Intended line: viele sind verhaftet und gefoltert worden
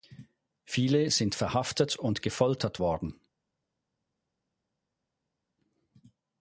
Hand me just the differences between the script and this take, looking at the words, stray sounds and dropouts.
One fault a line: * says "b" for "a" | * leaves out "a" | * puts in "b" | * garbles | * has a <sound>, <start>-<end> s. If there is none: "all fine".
all fine